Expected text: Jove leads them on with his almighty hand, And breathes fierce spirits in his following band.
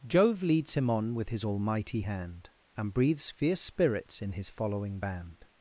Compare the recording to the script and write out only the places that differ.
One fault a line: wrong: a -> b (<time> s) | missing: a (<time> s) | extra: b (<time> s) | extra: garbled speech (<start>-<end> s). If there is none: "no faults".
wrong: them -> him (0.7 s)